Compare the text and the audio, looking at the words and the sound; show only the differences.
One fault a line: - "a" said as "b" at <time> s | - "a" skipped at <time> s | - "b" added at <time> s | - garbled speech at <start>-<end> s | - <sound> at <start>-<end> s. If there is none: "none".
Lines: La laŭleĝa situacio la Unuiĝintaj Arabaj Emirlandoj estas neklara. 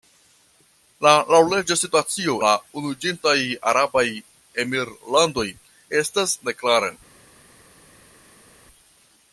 none